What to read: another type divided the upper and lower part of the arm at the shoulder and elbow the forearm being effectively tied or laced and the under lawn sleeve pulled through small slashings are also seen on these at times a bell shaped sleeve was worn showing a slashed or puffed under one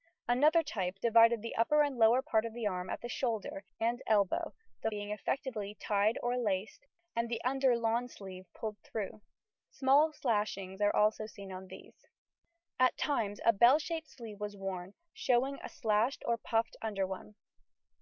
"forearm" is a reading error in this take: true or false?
true